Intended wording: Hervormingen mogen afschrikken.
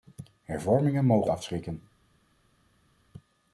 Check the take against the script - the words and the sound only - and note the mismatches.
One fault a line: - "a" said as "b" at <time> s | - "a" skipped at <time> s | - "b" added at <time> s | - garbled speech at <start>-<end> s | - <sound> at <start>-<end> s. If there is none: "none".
none